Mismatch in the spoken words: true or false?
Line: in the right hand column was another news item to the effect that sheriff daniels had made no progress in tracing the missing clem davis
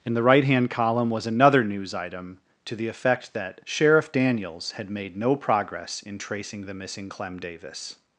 false